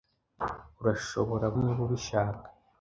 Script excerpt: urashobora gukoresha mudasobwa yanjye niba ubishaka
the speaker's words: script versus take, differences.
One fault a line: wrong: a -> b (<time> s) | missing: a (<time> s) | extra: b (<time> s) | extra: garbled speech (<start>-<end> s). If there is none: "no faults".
missing: gukoresha mudasobwa yanjye (1.5 s)